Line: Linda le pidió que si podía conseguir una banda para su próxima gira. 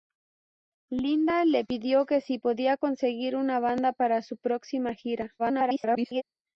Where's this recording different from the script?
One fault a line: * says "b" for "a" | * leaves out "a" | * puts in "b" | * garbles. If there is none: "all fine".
* garbles